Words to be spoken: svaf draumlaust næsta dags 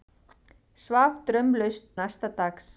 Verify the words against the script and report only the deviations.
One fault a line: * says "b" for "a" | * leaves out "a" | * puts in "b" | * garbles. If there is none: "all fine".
all fine